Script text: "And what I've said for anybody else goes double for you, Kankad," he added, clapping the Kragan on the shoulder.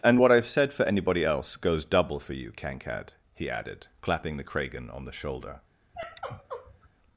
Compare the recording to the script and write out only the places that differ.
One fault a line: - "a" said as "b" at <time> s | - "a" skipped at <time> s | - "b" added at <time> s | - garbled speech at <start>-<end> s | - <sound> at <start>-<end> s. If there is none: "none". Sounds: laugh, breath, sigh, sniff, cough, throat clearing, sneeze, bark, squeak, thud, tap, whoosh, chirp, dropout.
- sigh at 5.9-6.9 s